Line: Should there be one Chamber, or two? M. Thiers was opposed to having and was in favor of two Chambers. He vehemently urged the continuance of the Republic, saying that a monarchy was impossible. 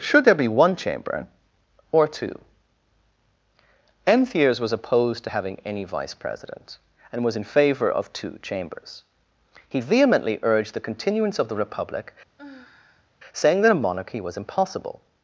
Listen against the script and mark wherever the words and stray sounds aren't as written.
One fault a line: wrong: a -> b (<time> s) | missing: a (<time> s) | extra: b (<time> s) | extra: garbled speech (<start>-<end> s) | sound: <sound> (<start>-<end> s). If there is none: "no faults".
extra: any vice president (5.6 s)
sound: sigh (12.4-13.1 s)